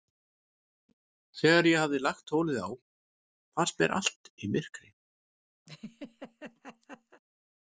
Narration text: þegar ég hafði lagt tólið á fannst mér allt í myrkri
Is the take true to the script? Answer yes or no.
yes